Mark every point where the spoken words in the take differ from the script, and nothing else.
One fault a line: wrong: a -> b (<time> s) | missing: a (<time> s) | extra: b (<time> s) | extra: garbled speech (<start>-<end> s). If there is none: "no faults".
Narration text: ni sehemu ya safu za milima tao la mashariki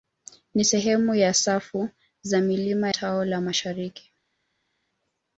no faults